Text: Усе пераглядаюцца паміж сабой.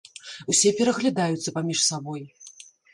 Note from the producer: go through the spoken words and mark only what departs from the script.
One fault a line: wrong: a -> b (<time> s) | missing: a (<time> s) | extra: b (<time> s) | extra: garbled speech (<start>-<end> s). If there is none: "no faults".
no faults